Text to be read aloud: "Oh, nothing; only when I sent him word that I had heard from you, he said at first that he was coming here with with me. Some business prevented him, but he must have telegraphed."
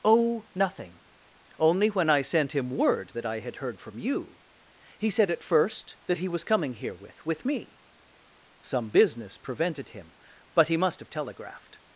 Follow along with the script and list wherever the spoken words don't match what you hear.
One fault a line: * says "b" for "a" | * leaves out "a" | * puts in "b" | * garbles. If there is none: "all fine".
all fine